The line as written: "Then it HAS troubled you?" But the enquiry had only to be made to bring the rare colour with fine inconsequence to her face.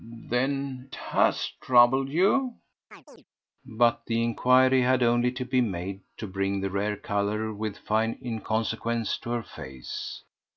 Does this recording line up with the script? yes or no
no